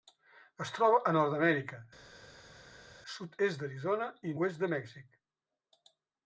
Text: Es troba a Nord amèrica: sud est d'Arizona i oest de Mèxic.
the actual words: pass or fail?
pass